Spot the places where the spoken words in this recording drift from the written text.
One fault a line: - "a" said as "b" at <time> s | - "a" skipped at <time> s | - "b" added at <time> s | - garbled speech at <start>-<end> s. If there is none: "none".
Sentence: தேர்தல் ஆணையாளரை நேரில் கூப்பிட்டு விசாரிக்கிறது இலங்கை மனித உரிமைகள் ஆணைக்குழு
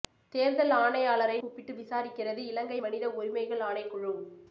- "நேரில்" skipped at 1.4 s